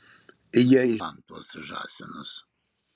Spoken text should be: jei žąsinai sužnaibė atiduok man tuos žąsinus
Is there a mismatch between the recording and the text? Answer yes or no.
yes